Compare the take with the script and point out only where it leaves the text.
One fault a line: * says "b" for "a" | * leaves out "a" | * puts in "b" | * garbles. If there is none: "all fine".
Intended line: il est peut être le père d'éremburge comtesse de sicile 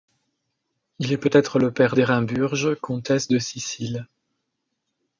all fine